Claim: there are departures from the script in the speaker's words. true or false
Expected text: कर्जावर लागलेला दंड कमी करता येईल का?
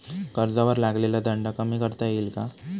false